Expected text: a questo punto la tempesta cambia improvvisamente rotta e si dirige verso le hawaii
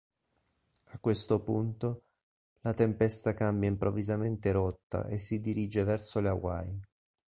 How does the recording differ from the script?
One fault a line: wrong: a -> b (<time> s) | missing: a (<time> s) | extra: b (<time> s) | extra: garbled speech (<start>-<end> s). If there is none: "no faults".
no faults